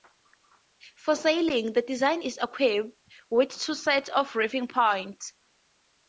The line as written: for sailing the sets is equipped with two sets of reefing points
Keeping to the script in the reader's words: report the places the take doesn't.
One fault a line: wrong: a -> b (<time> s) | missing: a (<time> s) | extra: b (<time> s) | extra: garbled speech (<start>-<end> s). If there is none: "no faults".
wrong: sets -> design (1.8 s)